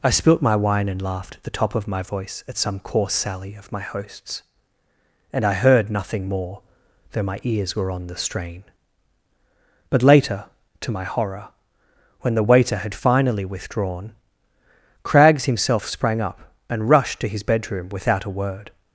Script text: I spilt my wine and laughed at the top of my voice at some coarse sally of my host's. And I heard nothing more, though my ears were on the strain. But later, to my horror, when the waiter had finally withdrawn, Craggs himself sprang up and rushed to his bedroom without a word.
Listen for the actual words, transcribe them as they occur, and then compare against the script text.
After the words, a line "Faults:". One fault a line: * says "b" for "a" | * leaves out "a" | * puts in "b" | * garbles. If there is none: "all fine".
I spilt my wine and laughed at the top of my voice at some coarse sally of my host's. And I heard nothing more, though my ears were on the strain. But later, to my horror, when the waiter had finally withdrawn, Craggs himself sprang up and rushed to his bedroom without a word.
Faults:
all fine